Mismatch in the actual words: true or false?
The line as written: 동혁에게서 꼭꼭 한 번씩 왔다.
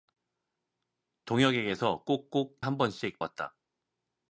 false